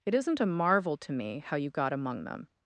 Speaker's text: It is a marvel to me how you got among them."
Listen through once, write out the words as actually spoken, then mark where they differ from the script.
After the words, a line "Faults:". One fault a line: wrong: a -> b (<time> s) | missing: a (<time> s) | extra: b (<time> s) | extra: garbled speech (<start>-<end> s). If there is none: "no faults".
It isn't a marvel to me how you got among them."
Faults:
wrong: is -> isn't (0.1 s)